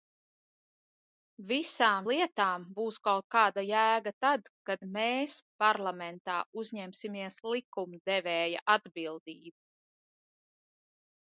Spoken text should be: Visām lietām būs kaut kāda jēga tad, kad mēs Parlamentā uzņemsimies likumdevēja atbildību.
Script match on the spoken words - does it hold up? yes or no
yes